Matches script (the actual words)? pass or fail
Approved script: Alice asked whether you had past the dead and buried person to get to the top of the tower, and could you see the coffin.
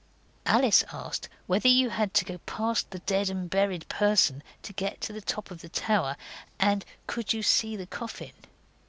fail